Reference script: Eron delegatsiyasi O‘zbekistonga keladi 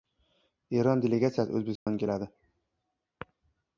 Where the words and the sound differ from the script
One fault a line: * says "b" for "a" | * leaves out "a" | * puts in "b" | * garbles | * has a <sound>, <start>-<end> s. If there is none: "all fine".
* has a dropout, 1.8-1.9 s